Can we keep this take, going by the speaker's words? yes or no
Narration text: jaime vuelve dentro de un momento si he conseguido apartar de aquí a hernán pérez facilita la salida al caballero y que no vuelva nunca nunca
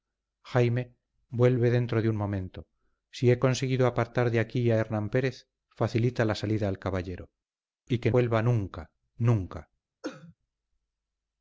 no